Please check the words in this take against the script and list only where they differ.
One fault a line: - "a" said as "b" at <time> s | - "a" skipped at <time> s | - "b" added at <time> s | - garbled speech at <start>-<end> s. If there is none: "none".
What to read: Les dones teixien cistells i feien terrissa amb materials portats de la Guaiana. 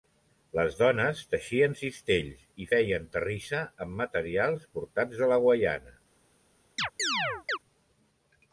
none